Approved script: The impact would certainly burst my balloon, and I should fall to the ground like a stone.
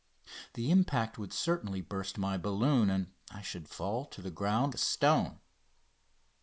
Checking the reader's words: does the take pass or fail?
fail